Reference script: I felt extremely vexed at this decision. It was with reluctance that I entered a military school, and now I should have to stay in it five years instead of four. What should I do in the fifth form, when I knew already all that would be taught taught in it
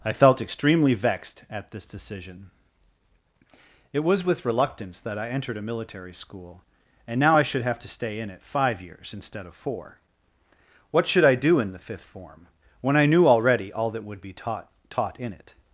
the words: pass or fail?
pass